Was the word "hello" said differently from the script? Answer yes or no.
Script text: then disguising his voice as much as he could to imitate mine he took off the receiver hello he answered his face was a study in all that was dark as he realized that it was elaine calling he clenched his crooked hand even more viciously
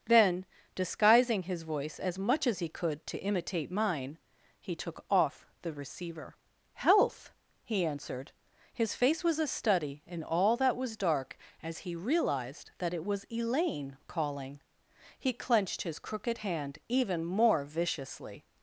yes